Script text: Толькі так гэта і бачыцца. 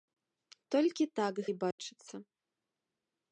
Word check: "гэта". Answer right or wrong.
wrong